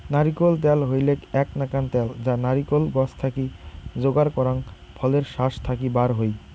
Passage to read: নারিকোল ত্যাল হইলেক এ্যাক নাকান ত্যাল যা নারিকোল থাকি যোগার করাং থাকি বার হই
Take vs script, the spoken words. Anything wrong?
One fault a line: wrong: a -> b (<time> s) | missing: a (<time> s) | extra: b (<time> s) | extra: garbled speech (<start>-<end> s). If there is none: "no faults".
extra: গছ (3.0 s)
extra: ফলের শাস (5.0 s)